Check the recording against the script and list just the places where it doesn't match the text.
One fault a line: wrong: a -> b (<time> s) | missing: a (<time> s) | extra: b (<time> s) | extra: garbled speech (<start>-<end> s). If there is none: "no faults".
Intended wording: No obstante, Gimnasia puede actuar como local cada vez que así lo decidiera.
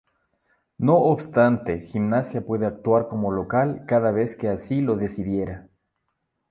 no faults